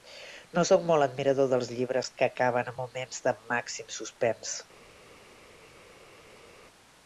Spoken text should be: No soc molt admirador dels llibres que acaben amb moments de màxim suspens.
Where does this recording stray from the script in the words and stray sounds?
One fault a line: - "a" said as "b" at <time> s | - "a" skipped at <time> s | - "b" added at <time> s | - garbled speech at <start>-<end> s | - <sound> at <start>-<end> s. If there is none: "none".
none